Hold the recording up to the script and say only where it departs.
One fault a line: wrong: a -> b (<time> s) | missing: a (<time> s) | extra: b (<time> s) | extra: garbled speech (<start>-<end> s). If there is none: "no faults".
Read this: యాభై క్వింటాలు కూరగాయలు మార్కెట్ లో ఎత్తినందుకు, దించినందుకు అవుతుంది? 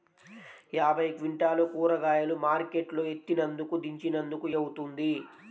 no faults